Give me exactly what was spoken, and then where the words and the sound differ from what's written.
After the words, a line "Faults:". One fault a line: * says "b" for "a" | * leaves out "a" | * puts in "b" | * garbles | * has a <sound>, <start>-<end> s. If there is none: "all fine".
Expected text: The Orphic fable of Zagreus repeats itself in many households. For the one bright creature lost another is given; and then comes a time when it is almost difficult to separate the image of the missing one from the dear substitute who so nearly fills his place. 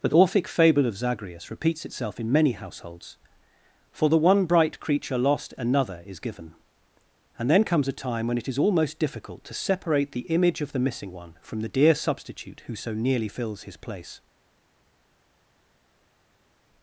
The Orphic fable of Zagreus repeats itself in many households. For the one bright creature lost another is given; and then comes a time when it is almost difficult to separate the image of the missing one from the dear substitute who so nearly fills his place.
Faults:
all fine